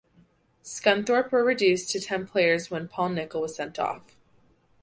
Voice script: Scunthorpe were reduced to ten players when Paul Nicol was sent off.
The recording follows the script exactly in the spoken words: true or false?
true